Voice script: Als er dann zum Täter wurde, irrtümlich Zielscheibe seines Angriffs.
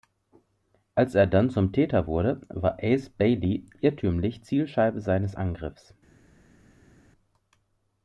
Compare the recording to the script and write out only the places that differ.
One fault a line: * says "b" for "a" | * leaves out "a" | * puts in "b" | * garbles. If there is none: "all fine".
* puts in "war Ace Bailey"